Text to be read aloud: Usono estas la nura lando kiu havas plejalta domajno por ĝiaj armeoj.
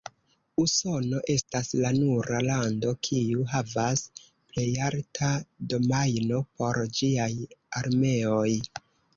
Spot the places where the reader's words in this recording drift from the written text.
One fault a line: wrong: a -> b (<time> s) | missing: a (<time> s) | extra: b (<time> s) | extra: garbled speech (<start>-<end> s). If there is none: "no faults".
no faults